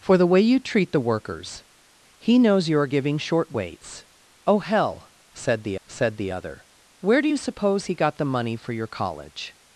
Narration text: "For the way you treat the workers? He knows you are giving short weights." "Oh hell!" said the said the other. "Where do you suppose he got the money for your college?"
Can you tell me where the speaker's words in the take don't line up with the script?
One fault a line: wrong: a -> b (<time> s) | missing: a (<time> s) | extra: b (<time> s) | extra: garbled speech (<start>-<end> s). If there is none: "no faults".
no faults